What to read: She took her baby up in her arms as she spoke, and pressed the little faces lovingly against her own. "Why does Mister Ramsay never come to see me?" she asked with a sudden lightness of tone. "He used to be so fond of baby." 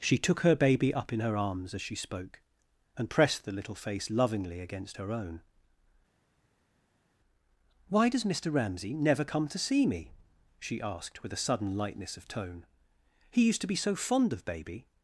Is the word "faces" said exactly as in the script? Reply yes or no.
no